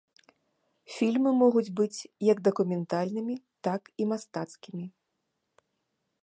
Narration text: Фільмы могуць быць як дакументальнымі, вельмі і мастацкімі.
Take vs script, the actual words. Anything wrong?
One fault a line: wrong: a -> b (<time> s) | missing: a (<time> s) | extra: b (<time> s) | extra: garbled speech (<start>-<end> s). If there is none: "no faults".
wrong: вельмі -> так (3.7 s)